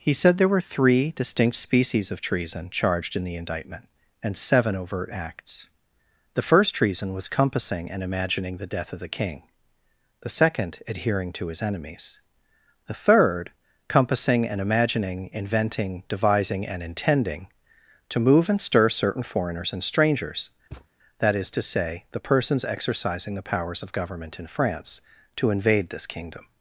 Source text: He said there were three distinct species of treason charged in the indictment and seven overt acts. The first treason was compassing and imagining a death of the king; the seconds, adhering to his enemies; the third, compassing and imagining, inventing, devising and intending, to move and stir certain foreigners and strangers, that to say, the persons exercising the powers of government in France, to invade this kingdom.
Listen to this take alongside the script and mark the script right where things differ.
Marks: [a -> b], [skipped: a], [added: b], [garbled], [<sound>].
He said there were three distinct species of treason charged in the indictment and seven overt acts. The first treason was compassing and imagining [a -> the] death of the king; the [seconds, -> second] adhering to his enemies; the third, compassing and imagining, inventing, devising and intending, to move and stir certain foreigners and strangers, [thud] that [added: is] to say, the persons exercising the powers of government in France, to invade this kingdom.